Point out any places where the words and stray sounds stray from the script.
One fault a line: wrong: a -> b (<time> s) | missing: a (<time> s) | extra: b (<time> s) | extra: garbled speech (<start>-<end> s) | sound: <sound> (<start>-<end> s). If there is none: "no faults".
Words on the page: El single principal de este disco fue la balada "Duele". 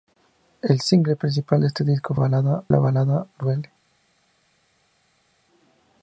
wrong: fue -> balada (2.2 s)